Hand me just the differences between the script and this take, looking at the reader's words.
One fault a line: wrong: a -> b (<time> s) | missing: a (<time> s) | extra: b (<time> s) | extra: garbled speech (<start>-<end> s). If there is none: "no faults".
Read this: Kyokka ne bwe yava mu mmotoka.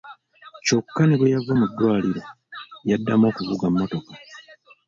extra: ddwaliro yaddamu okuvuga (1.7 s)